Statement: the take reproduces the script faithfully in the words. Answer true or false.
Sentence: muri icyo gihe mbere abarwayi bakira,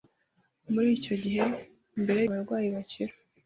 true